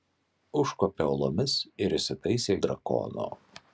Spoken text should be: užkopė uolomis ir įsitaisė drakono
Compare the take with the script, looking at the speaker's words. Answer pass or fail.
pass